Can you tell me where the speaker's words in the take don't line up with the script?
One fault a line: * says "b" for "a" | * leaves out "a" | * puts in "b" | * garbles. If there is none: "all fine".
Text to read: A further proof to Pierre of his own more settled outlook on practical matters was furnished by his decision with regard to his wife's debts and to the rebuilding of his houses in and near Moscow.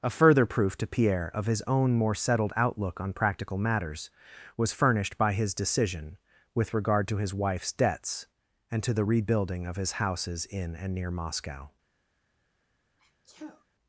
all fine